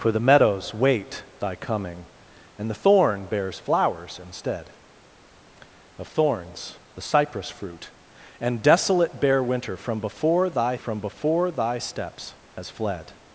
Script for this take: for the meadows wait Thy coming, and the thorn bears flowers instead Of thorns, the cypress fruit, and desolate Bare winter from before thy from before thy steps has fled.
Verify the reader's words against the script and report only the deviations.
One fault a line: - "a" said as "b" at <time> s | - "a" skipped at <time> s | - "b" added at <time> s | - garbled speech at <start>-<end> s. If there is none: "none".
none